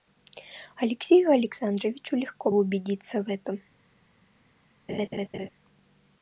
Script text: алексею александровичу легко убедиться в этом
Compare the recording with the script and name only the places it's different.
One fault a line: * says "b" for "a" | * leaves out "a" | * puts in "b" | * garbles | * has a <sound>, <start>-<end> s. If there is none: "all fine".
* has a laugh, 4.9-5.5 s